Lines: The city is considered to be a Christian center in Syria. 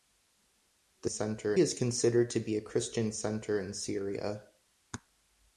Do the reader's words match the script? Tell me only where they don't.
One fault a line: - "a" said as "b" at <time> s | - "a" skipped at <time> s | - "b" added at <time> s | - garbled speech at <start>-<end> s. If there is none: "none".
- "city" said as "center" at 1.1 s